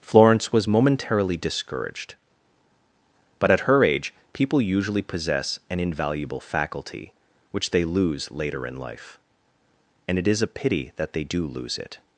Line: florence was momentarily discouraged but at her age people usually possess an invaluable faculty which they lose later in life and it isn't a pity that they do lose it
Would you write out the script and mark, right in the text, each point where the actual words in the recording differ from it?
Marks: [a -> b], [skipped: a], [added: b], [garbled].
florence was momentarily discouraged but at her age people usually possess an invaluable faculty which they lose later in life and it [isn't -> is] a pity that they do lose it